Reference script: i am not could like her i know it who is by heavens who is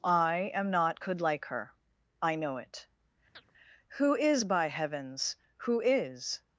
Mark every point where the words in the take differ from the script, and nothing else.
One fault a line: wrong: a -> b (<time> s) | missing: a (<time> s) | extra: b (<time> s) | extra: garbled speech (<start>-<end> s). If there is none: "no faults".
no faults